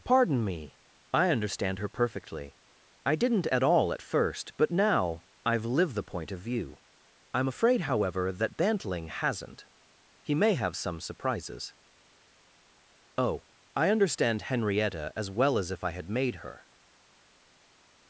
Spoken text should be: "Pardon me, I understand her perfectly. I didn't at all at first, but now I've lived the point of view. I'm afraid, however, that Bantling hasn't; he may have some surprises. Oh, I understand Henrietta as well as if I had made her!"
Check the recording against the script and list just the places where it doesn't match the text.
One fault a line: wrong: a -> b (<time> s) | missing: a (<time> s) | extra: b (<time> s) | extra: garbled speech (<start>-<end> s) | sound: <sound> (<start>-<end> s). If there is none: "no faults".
no faults